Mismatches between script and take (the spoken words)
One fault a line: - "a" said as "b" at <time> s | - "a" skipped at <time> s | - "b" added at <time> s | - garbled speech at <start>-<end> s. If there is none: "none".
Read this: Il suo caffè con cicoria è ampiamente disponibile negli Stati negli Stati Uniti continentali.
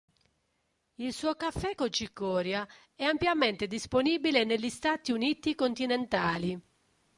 - "negli Stati" skipped at 5.1 s